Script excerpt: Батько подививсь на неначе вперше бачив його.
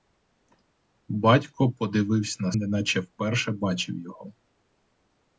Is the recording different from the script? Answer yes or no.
no